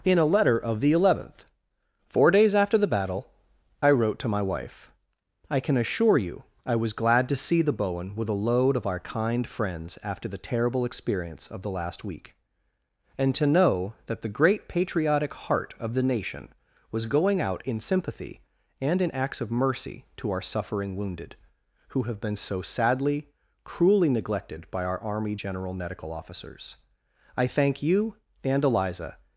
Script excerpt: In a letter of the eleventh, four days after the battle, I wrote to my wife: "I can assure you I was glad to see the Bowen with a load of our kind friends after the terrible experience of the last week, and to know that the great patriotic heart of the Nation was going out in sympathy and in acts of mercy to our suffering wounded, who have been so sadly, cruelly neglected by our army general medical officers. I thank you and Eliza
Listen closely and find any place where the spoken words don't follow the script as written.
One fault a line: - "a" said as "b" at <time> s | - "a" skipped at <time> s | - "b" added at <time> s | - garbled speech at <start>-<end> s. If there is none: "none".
none